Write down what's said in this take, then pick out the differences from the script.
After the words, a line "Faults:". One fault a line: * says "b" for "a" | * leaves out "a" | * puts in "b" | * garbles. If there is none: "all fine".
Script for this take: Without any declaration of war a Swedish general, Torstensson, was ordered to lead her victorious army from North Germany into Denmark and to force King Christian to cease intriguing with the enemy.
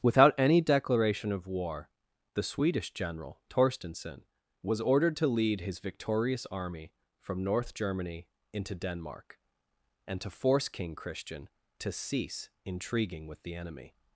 Without any declaration of war the Swedish general, Torstensson, was ordered to lead his victorious army from North Germany into Denmark and to force King Christian to cease intriguing with the enemy.
Faults:
* says "the" for "a"
* says "his" for "her"